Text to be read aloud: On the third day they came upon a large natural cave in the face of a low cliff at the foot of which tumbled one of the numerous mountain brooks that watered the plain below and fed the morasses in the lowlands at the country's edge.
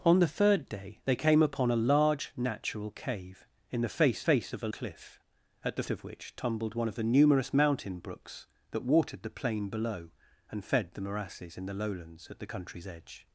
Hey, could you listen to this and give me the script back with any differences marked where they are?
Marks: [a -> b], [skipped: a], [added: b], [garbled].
On the third day they came upon a large natural cave in the face [added: face] of a [skipped: low] cliff at the [skipped: foot] of which tumbled one of the numerous mountain brooks that watered the plain below and fed the morasses in the lowlands at the country's edge.